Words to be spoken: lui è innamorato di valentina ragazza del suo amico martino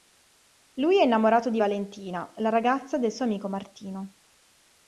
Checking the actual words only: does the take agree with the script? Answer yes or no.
no